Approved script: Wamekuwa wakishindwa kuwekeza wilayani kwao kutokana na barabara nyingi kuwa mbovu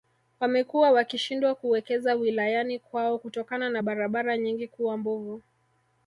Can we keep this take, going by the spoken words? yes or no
yes